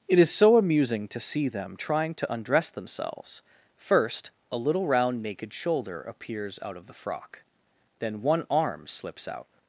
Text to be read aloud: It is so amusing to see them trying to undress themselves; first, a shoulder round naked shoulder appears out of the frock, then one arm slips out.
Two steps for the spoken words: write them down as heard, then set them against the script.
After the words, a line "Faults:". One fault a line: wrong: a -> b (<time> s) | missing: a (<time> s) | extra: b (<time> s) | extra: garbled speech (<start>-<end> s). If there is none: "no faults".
It is so amusing to see them trying to undress themselves; first, a little round naked shoulder appears out of the frock, then one arm slips out.
Faults:
wrong: shoulder -> little (4.6 s)